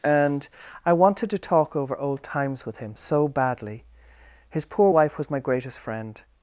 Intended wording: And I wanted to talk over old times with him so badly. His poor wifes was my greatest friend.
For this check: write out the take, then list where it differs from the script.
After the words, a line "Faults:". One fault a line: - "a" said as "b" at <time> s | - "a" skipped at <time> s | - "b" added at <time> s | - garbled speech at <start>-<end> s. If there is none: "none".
And I wanted to talk over old times with him so badly. His poor wife was my greatest friend.
Faults:
- "wifes" said as "wife" at 4.9 s